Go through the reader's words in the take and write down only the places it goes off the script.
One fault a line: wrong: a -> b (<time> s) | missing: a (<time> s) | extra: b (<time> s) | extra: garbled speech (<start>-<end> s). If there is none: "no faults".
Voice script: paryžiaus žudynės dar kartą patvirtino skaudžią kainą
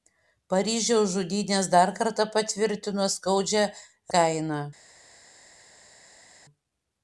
no faults